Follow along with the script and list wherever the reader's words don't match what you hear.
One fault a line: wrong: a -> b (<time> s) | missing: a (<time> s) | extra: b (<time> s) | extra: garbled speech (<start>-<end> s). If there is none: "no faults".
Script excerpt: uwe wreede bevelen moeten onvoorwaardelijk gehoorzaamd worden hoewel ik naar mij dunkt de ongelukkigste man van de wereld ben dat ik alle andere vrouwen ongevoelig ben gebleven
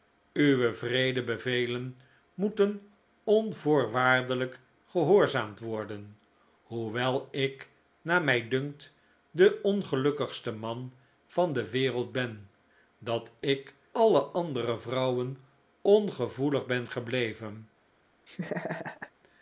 no faults